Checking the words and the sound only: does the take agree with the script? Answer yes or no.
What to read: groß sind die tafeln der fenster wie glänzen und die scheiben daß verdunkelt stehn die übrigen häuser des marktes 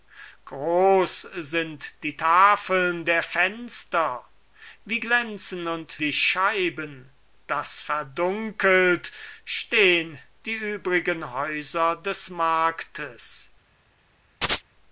no